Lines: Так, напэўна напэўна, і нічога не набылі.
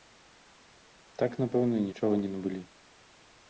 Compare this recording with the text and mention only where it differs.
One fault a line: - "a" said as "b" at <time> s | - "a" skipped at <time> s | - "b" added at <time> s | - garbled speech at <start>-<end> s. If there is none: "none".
- "напэўна" skipped at 1.8 s